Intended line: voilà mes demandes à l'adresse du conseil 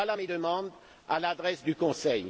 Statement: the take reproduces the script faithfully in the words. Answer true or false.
true